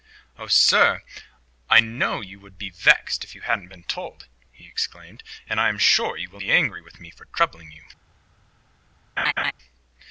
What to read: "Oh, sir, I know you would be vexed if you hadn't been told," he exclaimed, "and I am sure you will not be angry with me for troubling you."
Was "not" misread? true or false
true